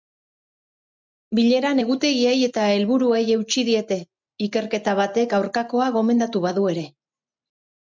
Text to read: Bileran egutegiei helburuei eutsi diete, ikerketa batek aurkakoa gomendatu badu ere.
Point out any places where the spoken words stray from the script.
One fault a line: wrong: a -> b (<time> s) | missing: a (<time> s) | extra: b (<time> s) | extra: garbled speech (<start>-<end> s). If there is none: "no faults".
extra: eta (2.5 s)